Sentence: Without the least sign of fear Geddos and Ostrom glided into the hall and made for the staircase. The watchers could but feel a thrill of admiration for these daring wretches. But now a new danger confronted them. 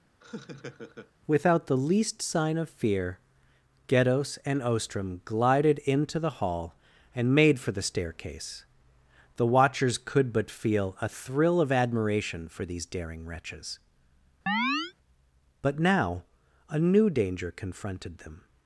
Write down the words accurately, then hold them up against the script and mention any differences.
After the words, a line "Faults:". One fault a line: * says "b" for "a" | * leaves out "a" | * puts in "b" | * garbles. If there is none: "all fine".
Without the least sign of fear Geddos and Ostrom glided into the hall and made for the staircase. The watchers could but feel a thrill of admiration for these daring wretches. But now a new danger confronted them.
Faults:
all fine